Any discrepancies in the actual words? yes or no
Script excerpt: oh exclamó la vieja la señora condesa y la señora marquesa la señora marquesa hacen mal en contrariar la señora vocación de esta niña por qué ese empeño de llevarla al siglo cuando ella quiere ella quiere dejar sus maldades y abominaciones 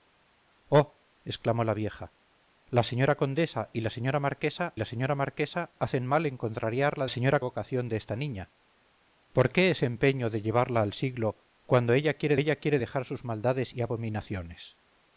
no